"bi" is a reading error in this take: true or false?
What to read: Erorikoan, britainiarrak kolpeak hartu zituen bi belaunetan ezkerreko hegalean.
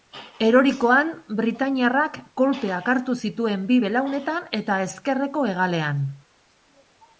false